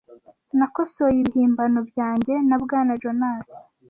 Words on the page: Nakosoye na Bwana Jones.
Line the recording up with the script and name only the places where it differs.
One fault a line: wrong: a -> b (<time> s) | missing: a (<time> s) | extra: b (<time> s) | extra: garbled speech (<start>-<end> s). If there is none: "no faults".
extra: ibihimbano byanjye (1.2 s)